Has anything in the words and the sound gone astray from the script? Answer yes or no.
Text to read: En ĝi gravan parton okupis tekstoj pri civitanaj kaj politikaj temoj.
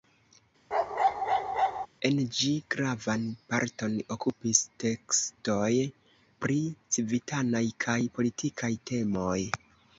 yes